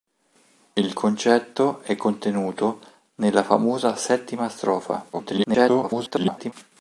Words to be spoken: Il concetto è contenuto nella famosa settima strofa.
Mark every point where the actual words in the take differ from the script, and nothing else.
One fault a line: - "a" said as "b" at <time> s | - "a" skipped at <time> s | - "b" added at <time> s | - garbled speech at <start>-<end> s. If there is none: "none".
- garbled speech at 5.1-6.5 s